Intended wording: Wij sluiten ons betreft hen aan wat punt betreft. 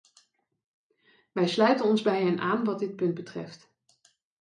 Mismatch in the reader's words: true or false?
true